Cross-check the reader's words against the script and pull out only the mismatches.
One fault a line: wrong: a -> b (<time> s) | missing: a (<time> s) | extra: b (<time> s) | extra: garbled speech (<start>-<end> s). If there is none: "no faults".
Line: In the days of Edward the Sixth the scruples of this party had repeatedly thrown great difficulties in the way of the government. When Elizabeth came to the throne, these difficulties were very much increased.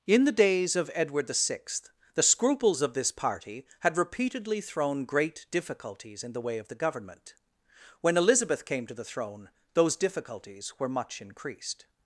wrong: these -> those (9.8 s)
missing: very (10.9 s)